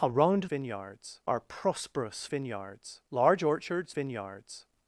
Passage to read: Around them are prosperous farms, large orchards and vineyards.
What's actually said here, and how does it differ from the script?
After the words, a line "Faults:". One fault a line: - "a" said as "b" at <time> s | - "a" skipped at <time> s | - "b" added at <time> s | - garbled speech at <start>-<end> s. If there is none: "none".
Around vineyards are prosperous vineyards, large orchards vineyards.
Faults:
- "them" said as "vineyards" at 0.5 s
- "farms" said as "vineyards" at 2.3 s
- "and" skipped at 3.9 s